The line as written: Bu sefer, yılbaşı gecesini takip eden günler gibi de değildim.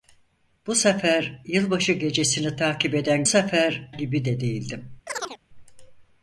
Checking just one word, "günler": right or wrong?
wrong